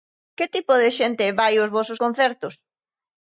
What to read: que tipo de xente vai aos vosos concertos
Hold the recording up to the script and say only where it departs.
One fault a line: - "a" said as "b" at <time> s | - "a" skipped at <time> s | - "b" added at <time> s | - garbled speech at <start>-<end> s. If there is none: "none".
none